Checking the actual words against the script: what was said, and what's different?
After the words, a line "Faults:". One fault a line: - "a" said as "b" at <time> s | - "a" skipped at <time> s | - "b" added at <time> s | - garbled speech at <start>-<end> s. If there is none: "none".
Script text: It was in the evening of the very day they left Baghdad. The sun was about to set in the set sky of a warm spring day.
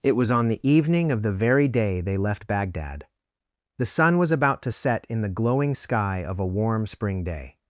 It was on the evening of the very day they left Baghdad. The sun was about to set in the glowing sky of a warm spring day.
Faults:
- "in" said as "on" at 0.3 s
- "set" said as "glowing" at 5.3 s